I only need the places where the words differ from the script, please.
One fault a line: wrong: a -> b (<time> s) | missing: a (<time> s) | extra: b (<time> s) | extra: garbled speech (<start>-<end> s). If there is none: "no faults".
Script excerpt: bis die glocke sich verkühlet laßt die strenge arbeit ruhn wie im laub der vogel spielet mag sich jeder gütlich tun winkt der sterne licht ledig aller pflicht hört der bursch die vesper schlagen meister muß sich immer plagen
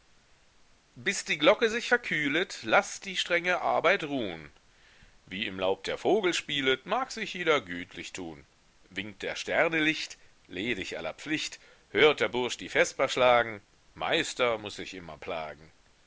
no faults